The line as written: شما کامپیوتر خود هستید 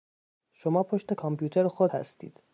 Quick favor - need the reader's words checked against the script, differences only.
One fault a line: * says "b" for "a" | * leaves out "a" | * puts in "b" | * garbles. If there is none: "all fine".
* puts in "پشت"